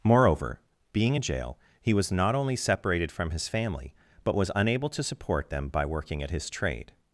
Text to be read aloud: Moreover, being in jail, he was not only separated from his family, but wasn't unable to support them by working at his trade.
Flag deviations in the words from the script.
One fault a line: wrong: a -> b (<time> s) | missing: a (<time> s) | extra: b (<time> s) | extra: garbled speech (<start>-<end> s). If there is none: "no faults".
wrong: wasn't -> was (4.3 s)